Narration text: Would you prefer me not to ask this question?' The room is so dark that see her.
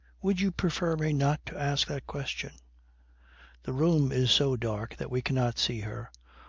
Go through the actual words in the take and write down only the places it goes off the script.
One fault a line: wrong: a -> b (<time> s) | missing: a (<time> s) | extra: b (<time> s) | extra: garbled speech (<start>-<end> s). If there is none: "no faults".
wrong: this -> that (1.9 s)
extra: we cannot (5.1 s)